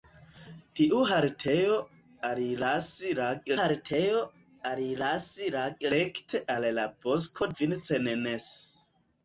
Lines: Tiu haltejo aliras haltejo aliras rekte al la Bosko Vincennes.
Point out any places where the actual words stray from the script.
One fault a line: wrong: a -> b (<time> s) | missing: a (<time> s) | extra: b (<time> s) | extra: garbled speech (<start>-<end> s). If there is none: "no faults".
no faults